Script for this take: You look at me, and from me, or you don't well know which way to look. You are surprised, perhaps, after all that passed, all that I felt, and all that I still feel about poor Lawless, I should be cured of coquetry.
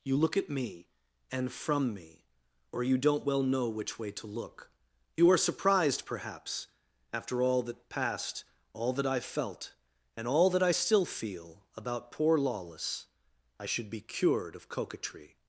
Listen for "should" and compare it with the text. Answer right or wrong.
right